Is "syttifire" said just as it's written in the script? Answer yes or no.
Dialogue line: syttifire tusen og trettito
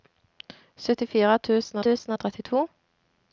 yes